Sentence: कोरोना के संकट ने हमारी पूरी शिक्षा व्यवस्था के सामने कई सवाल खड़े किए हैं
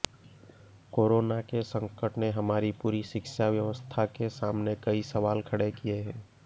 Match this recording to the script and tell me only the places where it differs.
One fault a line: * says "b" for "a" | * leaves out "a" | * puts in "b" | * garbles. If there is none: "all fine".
all fine